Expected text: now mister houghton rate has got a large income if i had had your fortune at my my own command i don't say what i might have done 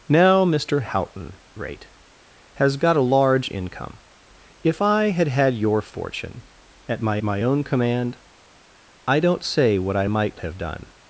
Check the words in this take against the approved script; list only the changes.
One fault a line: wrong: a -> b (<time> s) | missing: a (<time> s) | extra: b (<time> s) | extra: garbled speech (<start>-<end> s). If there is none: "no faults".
no faults